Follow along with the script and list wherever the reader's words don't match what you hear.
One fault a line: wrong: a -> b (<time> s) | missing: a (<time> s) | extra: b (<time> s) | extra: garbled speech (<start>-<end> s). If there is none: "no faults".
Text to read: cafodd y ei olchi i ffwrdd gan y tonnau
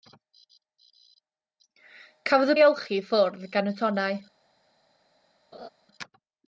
no faults